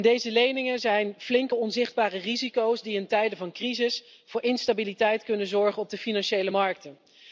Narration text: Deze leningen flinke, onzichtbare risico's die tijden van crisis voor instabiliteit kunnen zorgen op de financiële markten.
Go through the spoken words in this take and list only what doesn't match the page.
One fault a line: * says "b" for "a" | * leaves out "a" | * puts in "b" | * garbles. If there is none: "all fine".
* puts in "zijn"
* puts in "in"